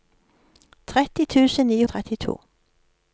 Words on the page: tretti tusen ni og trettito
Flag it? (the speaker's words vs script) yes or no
no